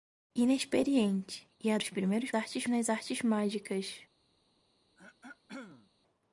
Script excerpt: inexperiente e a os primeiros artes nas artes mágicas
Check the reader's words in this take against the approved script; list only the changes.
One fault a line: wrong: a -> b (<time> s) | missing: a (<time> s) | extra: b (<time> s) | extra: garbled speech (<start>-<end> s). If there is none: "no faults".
no faults